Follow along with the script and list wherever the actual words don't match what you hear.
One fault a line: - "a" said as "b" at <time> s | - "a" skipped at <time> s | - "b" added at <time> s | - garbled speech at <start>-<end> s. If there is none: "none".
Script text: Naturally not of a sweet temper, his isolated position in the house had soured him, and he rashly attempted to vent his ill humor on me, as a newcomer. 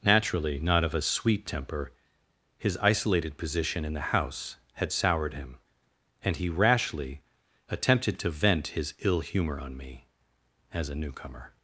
none